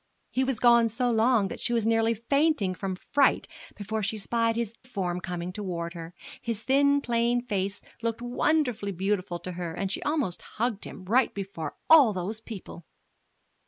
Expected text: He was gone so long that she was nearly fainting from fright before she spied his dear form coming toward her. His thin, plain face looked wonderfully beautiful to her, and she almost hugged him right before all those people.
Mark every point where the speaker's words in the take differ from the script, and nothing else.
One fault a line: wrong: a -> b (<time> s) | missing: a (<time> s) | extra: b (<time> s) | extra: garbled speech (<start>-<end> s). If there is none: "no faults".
missing: dear (4.7 s)